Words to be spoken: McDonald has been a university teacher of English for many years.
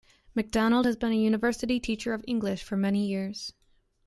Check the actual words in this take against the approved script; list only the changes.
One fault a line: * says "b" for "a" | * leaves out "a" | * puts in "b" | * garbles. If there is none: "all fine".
all fine